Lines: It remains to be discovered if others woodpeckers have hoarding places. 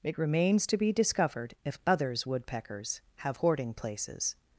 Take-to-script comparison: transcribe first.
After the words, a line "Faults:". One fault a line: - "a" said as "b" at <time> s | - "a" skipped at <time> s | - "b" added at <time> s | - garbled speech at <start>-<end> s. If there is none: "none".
It remains to be discovered if others woodpeckers have hoarding places.
Faults:
none